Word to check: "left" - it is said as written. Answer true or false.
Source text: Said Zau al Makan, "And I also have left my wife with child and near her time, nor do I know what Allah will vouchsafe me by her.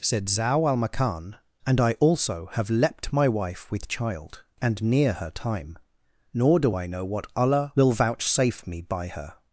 false